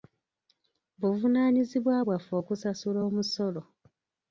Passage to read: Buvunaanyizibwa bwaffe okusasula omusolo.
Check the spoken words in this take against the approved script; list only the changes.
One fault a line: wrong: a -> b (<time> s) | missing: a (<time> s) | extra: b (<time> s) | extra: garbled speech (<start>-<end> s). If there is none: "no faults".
no faults